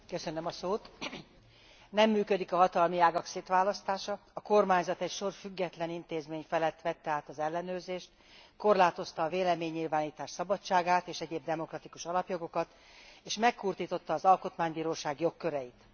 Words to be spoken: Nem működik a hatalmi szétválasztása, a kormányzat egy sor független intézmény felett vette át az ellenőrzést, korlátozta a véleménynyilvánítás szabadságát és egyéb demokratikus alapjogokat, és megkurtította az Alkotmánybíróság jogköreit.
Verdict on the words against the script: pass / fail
fail